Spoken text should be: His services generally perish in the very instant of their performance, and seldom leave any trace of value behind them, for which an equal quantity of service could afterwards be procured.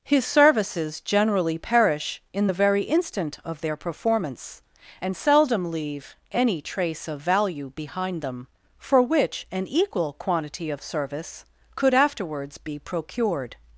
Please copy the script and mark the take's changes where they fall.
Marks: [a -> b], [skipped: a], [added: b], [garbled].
His services generally perish in the very instant of their performance, and seldom leave any trace of value behind them, for which an equal quantity of service could afterwards be procured.